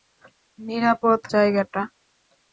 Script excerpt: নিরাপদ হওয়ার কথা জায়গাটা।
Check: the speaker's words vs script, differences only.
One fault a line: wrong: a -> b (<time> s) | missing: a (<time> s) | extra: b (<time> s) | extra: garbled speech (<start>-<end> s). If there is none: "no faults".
missing: হওয়ার কথা (1.2 s)